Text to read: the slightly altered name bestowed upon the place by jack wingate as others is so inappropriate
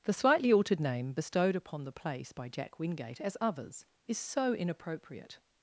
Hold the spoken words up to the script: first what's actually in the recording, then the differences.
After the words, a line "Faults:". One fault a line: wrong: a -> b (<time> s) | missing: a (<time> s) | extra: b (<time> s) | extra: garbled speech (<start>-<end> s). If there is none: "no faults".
the slightly altered name bestowed upon the place by jack wingate as others is so inappropriate
Faults:
no faults